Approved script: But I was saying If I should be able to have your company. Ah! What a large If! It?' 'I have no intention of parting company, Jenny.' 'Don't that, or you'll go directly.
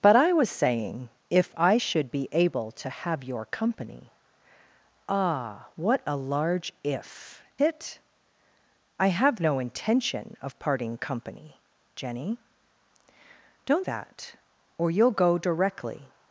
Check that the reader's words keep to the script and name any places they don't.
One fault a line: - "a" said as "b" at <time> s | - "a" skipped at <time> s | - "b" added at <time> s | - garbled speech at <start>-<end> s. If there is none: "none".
none